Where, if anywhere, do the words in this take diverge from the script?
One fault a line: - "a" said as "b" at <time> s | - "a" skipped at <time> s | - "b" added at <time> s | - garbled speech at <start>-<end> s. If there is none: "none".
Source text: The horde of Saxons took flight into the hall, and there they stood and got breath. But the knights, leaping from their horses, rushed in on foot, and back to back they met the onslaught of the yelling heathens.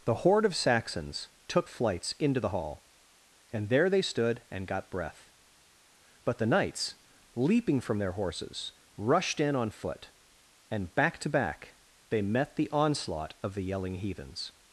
- "flight" said as "flights" at 1.7 s